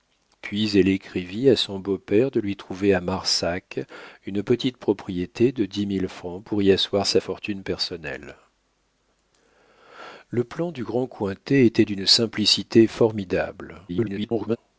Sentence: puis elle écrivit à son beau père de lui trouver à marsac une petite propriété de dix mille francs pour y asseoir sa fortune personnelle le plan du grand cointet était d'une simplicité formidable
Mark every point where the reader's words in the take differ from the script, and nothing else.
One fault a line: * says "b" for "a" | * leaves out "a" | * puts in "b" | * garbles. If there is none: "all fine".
* garbles